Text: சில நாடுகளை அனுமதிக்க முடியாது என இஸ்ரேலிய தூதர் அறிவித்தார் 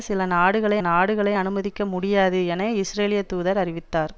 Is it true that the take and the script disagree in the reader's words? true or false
true